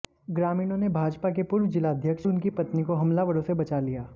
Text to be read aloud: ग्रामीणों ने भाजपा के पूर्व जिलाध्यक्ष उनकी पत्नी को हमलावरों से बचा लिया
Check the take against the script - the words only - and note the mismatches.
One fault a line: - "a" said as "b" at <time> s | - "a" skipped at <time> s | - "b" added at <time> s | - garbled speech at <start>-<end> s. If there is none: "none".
none